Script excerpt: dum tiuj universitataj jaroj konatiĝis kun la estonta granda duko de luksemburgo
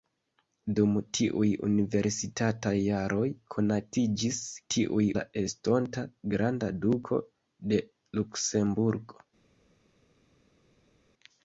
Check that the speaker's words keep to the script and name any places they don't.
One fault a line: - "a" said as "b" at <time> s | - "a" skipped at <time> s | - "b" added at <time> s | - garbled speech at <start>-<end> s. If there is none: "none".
- "kun" said as "tiuj" at 4.7 s